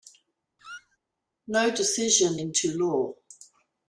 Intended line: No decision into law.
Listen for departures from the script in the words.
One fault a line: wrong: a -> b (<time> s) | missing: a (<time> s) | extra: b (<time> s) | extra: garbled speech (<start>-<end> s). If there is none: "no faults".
no faults